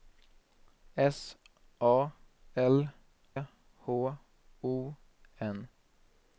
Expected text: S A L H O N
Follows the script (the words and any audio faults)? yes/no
yes